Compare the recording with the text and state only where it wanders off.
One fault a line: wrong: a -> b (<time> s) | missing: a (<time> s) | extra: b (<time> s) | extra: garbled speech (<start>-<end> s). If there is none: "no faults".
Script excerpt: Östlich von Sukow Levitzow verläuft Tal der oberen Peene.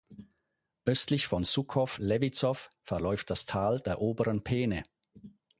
extra: das (3.3 s)